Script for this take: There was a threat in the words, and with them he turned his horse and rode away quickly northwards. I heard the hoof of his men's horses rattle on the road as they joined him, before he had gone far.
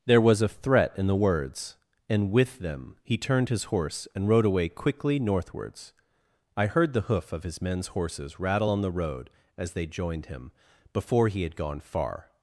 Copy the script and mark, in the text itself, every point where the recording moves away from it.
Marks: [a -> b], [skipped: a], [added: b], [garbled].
There was a threat in the words, and with them he turned his horse and rode away quickly northwards. I heard the hoof of his men's horses rattle on the road as they joined him, before he had gone far.